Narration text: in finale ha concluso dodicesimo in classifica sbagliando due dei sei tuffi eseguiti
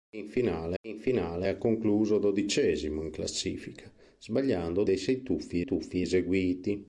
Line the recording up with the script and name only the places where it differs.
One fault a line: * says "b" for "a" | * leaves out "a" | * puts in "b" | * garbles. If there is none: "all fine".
* puts in "in finale"
* leaves out "due"
* puts in "tuffi"